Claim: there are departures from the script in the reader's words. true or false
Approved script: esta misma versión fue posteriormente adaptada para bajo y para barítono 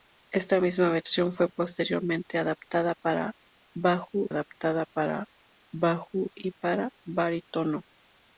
true